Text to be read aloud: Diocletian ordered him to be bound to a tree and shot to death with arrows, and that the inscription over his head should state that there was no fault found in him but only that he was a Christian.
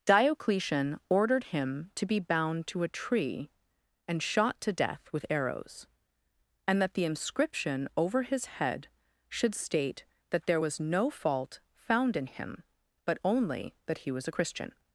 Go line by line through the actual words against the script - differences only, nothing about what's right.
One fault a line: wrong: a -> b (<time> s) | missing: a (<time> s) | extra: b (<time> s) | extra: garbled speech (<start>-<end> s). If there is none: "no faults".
no faults